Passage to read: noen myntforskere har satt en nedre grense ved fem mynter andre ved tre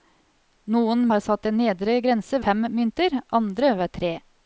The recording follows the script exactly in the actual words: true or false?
false